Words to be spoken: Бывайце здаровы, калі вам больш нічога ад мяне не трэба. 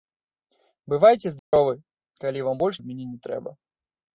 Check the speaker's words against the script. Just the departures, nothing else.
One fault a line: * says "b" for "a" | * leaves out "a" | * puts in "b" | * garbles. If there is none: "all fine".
* leaves out "нічога"